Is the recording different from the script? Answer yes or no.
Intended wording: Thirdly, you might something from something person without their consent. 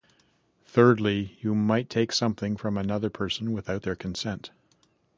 yes